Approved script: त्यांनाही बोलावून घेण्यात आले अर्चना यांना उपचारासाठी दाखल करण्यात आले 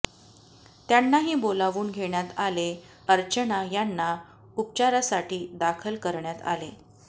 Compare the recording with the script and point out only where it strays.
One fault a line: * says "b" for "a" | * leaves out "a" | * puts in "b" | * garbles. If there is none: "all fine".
all fine